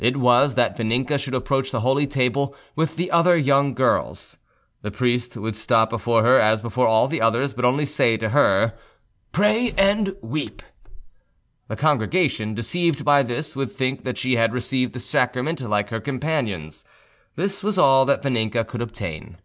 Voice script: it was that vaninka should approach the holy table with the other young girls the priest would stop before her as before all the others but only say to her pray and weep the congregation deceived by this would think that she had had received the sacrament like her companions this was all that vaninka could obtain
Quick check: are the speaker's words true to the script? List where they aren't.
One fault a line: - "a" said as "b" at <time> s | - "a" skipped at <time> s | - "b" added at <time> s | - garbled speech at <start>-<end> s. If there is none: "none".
- "had" skipped at 14.5 s